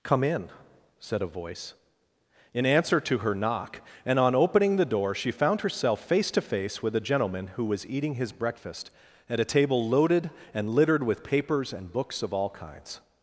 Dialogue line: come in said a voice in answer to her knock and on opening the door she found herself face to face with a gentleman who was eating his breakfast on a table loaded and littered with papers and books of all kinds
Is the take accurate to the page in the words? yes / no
no